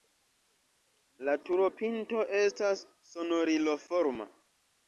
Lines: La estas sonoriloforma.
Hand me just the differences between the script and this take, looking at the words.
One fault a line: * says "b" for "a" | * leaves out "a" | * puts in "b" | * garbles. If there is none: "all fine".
* puts in "turopinto"